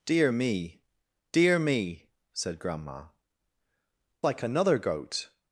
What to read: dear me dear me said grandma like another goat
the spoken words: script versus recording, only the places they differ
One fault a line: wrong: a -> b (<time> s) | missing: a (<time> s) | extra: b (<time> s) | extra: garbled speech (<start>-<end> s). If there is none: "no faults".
no faults